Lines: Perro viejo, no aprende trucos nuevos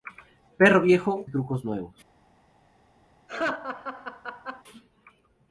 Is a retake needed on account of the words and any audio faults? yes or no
yes